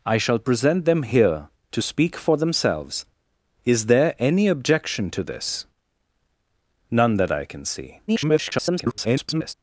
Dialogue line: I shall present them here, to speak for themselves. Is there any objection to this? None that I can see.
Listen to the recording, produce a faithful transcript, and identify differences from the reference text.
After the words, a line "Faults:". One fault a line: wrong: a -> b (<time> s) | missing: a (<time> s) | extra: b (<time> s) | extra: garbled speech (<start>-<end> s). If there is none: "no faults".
I shall present them here, to speak for themselves. Is there any objection to this? None that I can see. [garbled]
Faults:
extra: garbled speech (8.1-9.5 s)